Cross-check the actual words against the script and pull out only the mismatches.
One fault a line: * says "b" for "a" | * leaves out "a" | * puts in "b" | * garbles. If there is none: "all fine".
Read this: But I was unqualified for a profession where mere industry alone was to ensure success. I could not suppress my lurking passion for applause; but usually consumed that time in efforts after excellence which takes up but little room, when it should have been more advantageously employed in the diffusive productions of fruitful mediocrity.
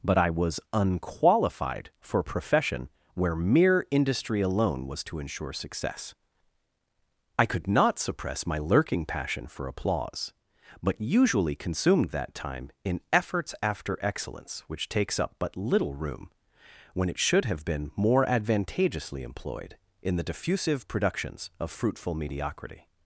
all fine